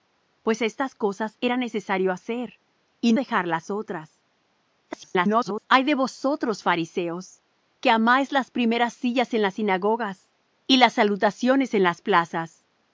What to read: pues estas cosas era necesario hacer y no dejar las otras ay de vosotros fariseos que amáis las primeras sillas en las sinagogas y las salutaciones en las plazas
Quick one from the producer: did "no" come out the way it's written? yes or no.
no